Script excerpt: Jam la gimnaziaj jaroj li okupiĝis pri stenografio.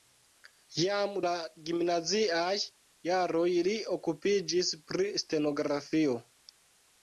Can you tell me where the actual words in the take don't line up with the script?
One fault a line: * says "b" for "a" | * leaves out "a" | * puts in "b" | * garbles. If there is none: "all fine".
all fine